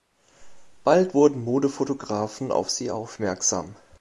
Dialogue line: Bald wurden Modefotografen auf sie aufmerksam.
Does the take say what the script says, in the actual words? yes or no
yes